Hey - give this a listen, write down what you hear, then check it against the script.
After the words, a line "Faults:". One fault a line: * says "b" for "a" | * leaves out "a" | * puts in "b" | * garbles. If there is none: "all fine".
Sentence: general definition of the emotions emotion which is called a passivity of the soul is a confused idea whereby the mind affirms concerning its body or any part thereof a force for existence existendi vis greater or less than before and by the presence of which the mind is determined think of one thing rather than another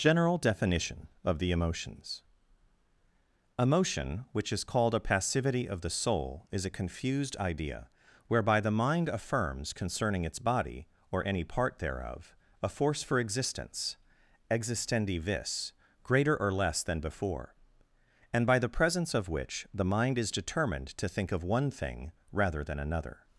general definition of the emotions emotion which is called a passivity of the soul is a confused idea whereby the mind affirms concerning its body or any part thereof a force for existence existendi vis greater or less than before and by the presence of which the mind is determined to think of one thing rather than another
Faults:
* puts in "to"